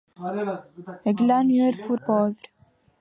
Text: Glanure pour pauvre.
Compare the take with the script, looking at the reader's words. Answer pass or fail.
pass